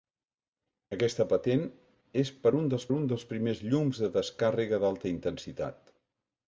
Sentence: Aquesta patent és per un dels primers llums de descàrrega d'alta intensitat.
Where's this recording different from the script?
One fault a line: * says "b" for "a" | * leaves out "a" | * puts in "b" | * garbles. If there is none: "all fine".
* puts in "un dels"